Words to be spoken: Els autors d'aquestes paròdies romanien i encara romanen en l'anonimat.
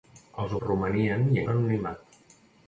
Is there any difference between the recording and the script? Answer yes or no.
yes